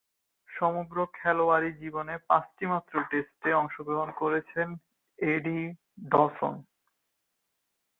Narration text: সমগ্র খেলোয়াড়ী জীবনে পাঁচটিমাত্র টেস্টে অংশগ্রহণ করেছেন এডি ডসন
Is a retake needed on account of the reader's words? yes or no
no